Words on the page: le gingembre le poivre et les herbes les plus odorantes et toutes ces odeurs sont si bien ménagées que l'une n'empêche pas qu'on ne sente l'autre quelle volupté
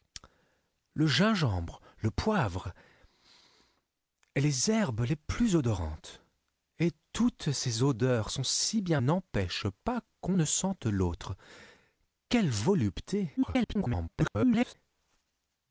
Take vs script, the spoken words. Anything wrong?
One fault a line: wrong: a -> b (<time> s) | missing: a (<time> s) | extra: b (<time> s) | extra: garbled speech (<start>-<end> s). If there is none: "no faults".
missing: ménagées que l'une (9.0 s)
extra: garbled speech (13.4-14.7 s)